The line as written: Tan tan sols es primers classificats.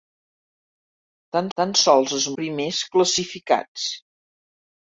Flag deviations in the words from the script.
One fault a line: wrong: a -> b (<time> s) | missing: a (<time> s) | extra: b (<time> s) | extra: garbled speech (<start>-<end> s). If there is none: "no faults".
no faults